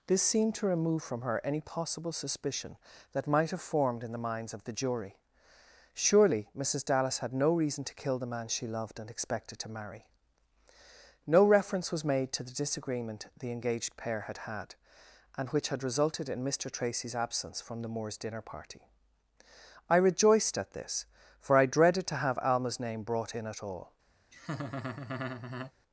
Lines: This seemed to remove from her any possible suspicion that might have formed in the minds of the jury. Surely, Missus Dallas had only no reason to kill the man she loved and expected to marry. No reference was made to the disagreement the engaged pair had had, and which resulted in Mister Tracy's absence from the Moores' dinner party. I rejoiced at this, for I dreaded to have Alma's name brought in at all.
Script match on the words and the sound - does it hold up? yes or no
no